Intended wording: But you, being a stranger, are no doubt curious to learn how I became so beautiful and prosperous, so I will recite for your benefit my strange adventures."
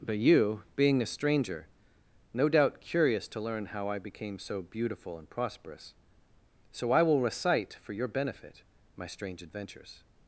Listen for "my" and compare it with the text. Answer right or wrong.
right